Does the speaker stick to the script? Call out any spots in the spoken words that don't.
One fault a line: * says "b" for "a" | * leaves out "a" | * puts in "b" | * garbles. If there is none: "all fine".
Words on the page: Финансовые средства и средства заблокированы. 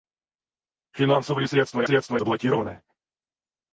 all fine